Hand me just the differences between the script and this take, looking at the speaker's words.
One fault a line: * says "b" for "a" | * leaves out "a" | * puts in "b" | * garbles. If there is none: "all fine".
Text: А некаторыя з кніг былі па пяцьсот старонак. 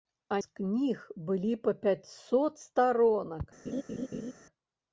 * leaves out "некаторыя"